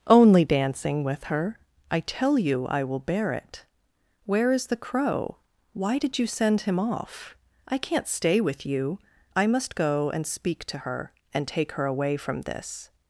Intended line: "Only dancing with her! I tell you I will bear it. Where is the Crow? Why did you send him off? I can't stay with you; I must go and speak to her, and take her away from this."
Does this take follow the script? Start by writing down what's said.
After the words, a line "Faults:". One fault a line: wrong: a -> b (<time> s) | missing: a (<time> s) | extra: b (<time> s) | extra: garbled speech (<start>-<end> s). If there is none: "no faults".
"Only dancing with her! I tell you I will bear it. Where is the Crow? Why did you send him off? I can't stay with you; I must go and speak to her, and take her away from this."
Faults:
no faults